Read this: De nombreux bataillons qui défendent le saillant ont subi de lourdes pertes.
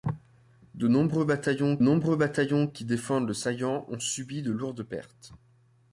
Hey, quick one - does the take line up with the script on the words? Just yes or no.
no